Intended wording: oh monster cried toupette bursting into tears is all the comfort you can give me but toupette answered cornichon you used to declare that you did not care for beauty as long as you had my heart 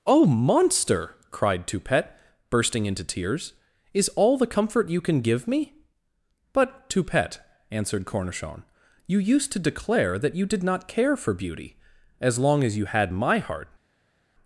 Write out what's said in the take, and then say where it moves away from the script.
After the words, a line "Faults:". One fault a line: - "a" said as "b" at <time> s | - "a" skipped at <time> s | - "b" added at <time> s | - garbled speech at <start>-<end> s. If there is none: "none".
oh monster cried toupette bursting into tears is all the comfort you can give me but toupette answered cornichon you used to declare that you did not care for beauty as long as you had my heart
Faults:
none